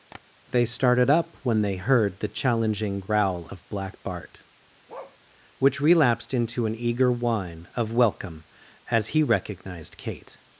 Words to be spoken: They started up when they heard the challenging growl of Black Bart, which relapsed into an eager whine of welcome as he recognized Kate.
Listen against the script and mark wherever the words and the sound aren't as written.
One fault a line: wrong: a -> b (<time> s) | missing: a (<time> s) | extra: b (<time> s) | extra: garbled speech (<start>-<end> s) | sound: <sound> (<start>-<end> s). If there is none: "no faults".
sound: tap (0.1-0.2 s)
sound: bark (4.9-5.2 s)